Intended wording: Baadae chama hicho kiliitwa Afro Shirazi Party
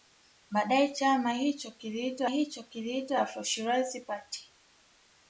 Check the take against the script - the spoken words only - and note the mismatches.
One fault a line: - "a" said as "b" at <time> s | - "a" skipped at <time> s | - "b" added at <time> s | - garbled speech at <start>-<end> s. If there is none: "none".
- "hicho kiliitwa" added at 2.3 s